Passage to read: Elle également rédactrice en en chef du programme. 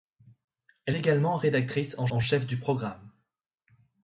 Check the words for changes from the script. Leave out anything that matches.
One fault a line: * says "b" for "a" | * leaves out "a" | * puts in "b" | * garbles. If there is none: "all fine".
all fine